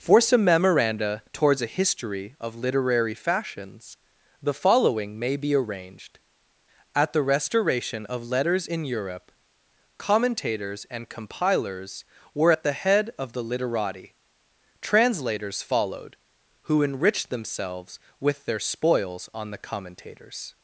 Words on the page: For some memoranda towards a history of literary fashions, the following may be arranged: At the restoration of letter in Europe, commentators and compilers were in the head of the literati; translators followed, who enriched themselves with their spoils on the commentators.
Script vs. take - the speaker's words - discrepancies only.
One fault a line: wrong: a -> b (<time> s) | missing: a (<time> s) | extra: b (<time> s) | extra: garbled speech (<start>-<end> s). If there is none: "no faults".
wrong: letter -> letters (8.3 s)
wrong: in -> at (12.5 s)